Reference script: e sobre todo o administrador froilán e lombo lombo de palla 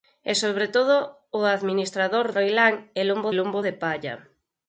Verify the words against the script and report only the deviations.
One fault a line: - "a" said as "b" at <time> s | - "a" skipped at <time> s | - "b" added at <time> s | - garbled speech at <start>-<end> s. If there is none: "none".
none